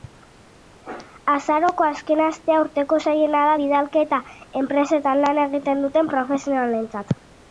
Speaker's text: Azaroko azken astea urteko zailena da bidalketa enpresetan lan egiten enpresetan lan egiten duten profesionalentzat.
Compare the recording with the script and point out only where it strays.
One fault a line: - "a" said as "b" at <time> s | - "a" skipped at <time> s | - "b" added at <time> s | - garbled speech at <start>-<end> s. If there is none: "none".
- "enpresetan lan egiten" skipped at 5.9 s